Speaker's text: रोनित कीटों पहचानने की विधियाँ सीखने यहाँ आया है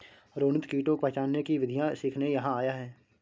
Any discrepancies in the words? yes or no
no